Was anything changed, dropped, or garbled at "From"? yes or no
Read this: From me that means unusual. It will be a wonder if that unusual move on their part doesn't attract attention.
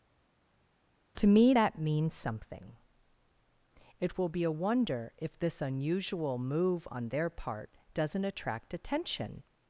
yes